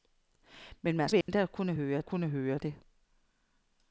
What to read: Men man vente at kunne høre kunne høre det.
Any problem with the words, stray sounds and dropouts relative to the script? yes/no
yes